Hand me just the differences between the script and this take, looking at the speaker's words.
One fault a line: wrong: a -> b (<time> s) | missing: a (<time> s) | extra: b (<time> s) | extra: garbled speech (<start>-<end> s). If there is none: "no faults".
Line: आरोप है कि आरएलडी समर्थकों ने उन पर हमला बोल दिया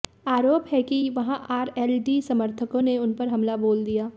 extra: वहां (1.1 s)